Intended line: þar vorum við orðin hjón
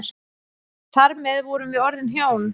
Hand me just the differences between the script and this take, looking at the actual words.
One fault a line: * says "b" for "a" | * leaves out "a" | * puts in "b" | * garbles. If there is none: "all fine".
* puts in "með"